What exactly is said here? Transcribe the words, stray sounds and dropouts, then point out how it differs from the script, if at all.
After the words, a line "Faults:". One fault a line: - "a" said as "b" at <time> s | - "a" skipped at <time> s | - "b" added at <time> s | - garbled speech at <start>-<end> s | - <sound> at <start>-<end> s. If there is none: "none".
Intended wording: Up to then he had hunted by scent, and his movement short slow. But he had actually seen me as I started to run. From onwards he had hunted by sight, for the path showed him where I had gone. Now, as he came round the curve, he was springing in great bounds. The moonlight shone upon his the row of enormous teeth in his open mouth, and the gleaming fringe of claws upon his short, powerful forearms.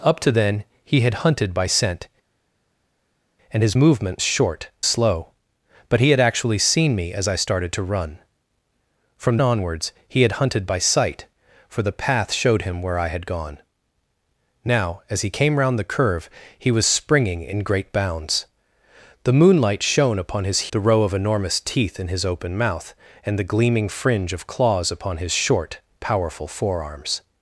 Up to then he had hunted by scent, and his movement short slow. But he had actually seen me as I started to run. From onwards he had hunted by sight, for the path showed him where I had gone. Now, as he came round the curve, he was springing in great bounds. The moonlight shone upon his the row of enormous teeth in his open mouth, and the gleaming fringe of claws upon his short, powerful forearms.
Faults:
none